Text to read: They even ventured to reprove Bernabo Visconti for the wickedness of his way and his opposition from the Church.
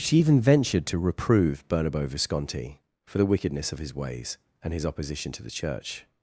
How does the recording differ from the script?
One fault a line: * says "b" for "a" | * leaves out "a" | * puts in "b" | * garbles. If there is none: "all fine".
* says "She" for "They"
* says "ways" for "way"
* says "to" for "from"